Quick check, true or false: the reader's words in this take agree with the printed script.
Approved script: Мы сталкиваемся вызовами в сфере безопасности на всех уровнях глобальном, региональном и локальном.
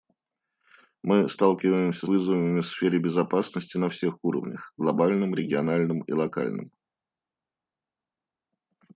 true